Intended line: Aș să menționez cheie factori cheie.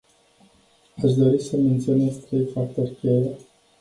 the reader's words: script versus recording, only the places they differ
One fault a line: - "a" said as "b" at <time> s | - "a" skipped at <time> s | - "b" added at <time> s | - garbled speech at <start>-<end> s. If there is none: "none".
- "dori" added at 1.1 s
- "cheie" said as "trei" at 2.1 s